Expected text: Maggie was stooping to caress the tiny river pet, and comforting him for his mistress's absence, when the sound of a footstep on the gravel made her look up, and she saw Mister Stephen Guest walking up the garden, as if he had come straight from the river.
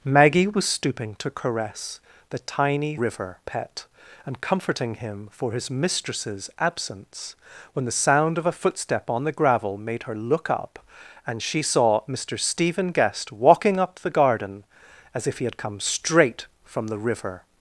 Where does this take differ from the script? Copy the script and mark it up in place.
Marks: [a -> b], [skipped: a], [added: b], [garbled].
Maggie was stooping to caress the tiny river pet, and comforting him for his mistress's absence, when the sound of a footstep on the gravel made her look up, and she saw Mister Stephen Guest walking up the garden, as if he had come straight from the river.